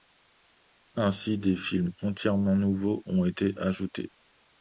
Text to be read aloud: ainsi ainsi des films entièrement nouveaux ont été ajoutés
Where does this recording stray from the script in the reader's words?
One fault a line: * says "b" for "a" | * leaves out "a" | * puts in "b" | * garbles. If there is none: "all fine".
* leaves out "ainsi"